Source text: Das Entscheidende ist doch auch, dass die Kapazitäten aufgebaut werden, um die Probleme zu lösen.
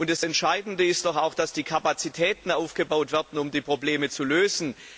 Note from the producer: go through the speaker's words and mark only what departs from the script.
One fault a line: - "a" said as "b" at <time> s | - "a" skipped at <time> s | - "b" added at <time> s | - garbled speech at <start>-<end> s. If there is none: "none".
none